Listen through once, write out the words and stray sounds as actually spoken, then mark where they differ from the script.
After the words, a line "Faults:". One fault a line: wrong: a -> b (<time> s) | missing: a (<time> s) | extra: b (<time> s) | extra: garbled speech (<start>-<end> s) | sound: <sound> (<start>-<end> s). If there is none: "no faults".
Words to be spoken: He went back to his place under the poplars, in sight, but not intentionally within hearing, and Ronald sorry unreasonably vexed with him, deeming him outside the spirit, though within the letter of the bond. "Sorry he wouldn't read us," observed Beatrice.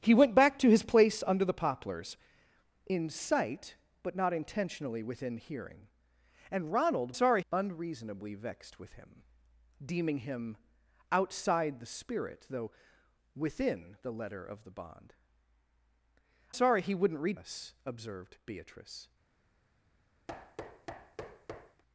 He went back to his place under the poplars, in sight, but not intentionally within hearing, and Ronald sorry unreasonably vexed with him, deeming him outside the spirit, though within the letter of the bond. "Sorry he wouldn't read us," observed Beatrice.
Faults:
sound: thud (20.3-21.8 s)